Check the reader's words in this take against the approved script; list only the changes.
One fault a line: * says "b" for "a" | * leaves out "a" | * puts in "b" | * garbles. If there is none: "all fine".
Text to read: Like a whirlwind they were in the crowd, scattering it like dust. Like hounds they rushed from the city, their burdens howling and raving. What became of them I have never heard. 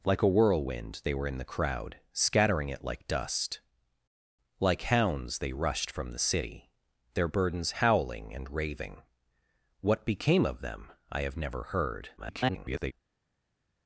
* garbles